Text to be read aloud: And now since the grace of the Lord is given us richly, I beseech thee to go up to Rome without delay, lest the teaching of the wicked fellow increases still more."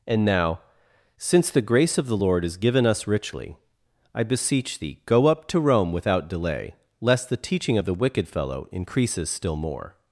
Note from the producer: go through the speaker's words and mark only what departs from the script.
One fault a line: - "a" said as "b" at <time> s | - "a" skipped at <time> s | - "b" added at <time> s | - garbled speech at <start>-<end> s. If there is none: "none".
- "to" skipped at 5.0 s